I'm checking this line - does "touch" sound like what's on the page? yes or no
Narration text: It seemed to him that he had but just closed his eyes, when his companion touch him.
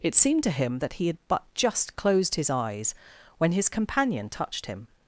no